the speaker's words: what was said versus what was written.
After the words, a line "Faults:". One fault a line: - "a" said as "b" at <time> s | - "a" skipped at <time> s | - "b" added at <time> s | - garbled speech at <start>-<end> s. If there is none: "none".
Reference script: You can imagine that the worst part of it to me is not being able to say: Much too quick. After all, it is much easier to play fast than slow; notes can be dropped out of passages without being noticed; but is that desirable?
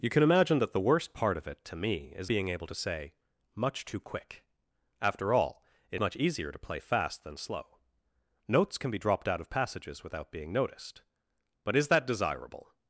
You can imagine that the worst part of it to me is being able to say: Much too quick. After all, it much easier to play fast than slow; notes can be dropped out of passages without being noticed; but is that desirable?
Faults:
- "not" skipped at 2.3 s
- "is" skipped at 6.0 s